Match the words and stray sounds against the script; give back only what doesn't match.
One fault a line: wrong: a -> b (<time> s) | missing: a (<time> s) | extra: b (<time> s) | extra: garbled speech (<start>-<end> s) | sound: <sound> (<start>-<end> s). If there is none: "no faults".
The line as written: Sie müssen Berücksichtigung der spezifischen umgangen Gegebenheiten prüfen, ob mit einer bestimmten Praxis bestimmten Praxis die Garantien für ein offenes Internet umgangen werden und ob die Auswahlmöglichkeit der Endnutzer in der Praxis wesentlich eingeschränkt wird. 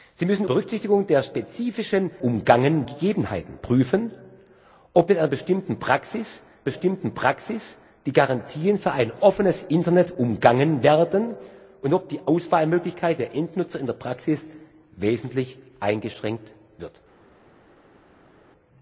no faults